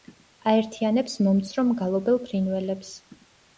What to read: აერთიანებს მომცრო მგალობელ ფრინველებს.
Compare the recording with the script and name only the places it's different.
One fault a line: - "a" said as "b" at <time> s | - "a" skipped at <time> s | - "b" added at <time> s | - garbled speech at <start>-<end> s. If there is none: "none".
none